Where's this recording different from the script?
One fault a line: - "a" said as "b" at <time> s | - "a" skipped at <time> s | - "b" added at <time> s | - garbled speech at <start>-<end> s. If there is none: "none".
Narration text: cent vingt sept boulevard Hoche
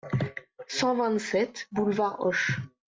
none